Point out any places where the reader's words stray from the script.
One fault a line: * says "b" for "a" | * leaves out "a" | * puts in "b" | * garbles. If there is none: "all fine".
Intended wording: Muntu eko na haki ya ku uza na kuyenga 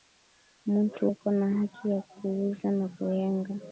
all fine